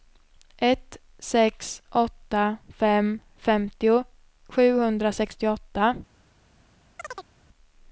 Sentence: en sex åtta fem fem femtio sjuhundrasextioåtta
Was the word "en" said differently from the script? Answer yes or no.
yes